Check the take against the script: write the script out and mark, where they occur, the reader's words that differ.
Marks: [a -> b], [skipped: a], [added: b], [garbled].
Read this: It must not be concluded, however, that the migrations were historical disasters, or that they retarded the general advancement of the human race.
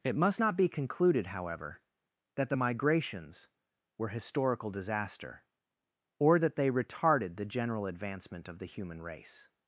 It must not be concluded, however, that the migrations were historical [disasters, -> disaster] or that they retarded the general advancement of the human race.